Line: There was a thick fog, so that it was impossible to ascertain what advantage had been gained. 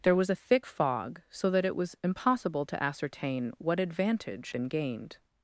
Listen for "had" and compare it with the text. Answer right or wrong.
wrong